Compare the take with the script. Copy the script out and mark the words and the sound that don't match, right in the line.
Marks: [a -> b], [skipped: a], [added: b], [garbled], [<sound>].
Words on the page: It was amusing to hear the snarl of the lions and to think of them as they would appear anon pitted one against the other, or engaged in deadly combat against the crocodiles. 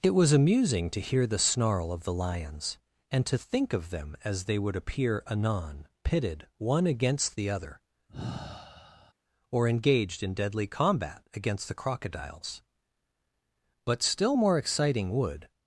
It was amusing to hear the snarl of the lions and to think of them as they would appear anon pitted one against the other, [sigh] or engaged in deadly combat against the crocodiles. [added: But still more exciting would]